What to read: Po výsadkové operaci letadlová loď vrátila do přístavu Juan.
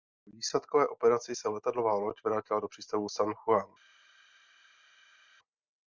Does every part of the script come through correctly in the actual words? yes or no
no